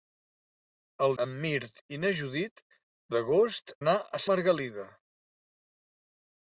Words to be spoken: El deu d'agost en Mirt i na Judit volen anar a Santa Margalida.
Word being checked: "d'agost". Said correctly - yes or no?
no